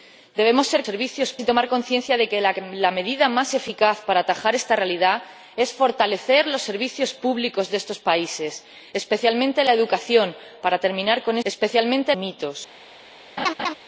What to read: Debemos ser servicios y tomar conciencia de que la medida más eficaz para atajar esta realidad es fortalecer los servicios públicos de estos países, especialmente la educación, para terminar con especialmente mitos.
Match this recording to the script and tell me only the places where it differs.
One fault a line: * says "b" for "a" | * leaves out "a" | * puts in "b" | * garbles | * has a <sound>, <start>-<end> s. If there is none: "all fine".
* has a laugh, 13.4-13.7 s